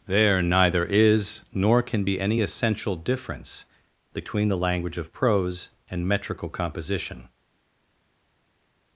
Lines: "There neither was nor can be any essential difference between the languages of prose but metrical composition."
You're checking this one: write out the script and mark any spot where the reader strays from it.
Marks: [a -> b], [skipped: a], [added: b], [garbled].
"There neither [was -> is] nor can be any essential difference between the [languages -> language] of prose [but -> and] metrical composition."